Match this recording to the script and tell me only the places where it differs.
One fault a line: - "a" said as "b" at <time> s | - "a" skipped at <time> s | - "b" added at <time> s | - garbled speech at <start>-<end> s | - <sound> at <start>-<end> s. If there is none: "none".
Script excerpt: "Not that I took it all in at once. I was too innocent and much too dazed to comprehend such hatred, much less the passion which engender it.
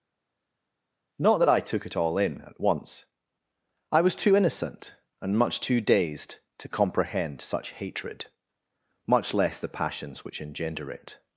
- "passion" said as "passions" at 9.7 s